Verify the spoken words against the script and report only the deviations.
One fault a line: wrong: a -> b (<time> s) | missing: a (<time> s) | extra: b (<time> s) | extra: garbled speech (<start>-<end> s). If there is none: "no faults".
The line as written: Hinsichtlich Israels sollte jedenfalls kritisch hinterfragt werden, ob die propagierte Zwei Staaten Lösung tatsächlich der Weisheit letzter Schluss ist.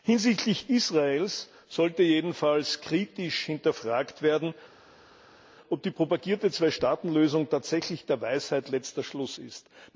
no faults